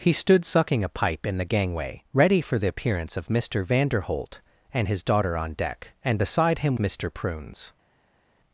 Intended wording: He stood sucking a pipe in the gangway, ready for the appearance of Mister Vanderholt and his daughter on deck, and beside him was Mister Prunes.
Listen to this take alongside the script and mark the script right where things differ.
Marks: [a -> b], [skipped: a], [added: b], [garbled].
He stood sucking a pipe in the gangway, ready for the appearance of Mister Vanderholt and his daughter on deck, and beside him [skipped: was] Mister Prunes.